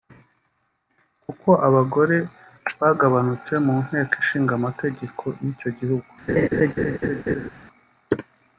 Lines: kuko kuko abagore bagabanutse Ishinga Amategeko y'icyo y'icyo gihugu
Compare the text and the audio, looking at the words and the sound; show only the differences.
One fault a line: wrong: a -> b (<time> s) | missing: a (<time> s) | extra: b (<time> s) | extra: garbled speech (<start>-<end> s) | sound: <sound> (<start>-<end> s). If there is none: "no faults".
missing: kuko (1.5 s)
extra: mu Nteko (3.6 s)
missing: y'icyo (5.7 s)
sound: laugh (6.3-7.5 s)